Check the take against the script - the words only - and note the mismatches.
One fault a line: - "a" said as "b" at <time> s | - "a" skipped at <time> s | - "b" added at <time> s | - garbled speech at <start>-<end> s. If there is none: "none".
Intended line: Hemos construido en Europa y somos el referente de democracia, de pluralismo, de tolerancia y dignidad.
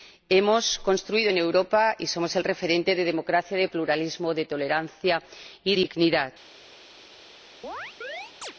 none